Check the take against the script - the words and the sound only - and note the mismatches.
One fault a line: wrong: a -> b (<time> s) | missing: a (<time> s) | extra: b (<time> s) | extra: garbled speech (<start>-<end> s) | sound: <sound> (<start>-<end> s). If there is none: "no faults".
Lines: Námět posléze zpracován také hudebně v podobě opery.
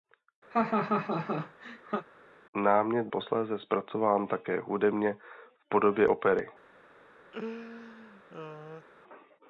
sound: laugh (0.5-2.1 s)
sound: laugh (7.3-8.9 s)